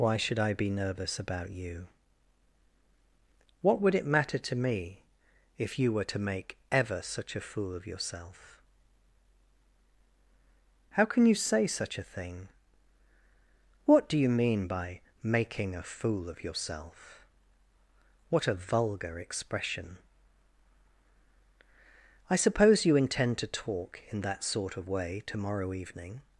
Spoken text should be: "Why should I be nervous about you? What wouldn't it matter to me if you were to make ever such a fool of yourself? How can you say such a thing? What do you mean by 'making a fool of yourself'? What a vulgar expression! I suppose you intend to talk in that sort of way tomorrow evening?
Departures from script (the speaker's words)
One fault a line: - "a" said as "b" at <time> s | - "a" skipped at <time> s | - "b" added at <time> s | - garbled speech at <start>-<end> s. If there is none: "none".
- "wouldn't" said as "would" at 3.8 s